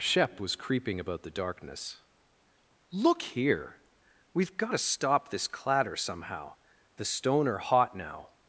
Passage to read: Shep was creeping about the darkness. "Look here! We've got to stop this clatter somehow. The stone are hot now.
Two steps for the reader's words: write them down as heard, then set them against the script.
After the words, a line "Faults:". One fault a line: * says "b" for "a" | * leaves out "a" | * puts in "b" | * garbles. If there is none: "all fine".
Shep was creeping about the darkness. "Look here! We've got to stop this clatter somehow. The stone are hot now.
Faults:
all fine